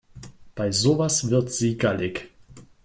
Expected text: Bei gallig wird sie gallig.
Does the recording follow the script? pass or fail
fail